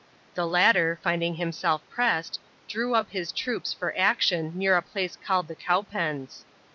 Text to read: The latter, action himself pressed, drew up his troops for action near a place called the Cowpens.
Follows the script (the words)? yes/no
no